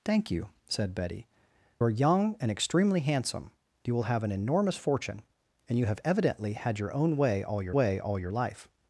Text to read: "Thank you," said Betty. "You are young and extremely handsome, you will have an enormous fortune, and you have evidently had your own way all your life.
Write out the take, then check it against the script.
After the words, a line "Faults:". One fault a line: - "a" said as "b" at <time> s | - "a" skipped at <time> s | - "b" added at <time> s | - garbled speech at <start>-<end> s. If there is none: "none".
"Thank you," said Betty. "Are young and extremely handsome, you will have an enormous fortune, and you have evidently had your own way all your way all your life.
Faults:
- "You" skipped at 1.3 s
- "way all your" added at 7.7 s